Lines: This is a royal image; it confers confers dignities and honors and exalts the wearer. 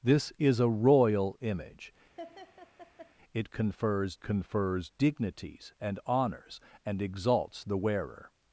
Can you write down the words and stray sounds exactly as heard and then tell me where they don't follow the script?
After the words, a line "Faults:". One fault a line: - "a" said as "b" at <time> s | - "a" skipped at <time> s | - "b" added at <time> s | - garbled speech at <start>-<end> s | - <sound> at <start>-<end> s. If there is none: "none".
This is a royal image; it confers confers dignities and honors and exalts the wearer.
Faults:
- laugh at 2.2-3.1 s